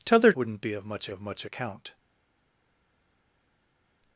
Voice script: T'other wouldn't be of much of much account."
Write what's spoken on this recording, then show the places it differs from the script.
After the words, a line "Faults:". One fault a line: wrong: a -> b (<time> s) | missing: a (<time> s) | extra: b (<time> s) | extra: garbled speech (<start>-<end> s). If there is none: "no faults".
T'other wouldn't be of much of much account."
Faults:
no faults